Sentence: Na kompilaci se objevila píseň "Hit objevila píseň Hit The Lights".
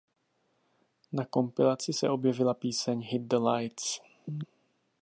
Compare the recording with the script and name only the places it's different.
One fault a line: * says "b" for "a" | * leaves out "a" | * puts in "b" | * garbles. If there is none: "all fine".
* leaves out "objevila píseň Hit"